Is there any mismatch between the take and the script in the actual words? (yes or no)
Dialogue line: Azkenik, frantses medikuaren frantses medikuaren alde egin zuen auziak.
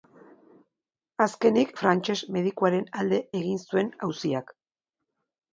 yes